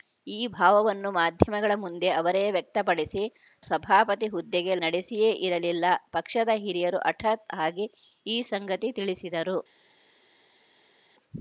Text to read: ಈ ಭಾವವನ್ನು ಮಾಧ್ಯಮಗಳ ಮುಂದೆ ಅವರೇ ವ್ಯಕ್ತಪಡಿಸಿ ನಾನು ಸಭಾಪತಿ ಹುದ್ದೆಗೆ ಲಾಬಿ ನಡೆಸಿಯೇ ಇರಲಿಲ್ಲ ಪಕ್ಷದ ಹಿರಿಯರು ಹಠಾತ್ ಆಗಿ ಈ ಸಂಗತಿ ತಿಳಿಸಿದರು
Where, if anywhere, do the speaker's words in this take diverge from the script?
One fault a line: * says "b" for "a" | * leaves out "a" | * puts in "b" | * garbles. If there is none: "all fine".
* leaves out "ನಾನು"
* leaves out "ಲಾಬಿ"